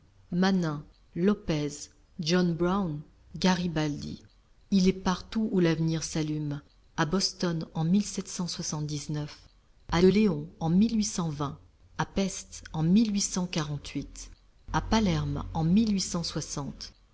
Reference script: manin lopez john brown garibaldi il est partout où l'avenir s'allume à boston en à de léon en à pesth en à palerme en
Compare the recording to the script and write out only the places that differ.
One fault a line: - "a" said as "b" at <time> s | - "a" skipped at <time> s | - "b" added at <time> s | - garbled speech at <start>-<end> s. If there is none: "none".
none